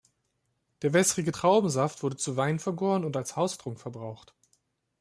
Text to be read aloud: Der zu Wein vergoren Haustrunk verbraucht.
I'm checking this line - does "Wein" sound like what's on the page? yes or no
yes